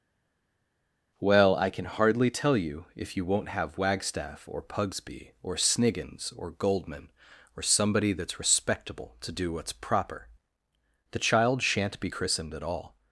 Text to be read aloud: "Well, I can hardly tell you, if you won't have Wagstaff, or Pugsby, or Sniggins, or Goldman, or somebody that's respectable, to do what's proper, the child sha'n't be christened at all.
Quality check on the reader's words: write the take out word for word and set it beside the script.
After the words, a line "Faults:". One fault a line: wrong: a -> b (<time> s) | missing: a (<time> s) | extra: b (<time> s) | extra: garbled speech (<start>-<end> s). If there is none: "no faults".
"Well, I can hardly tell you, if you won't have Wagstaff, or Pugsby, or Sniggins, or Goldman, or somebody that's respectable, to do what's proper, the child sha'n't be christened at all.
Faults:
no faults